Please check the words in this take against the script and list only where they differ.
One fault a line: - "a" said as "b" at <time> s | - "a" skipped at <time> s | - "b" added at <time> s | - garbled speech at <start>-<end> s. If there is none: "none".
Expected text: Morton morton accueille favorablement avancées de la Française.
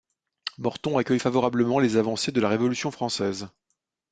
- "morton" skipped at 1.0 s
- "les" added at 1.8 s
- "Révolution" added at 2.5 s